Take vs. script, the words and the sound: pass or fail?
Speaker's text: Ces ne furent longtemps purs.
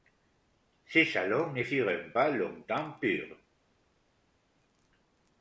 fail